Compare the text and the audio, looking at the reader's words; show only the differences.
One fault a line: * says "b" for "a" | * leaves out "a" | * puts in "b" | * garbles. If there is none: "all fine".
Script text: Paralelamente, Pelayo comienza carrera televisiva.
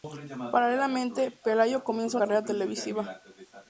all fine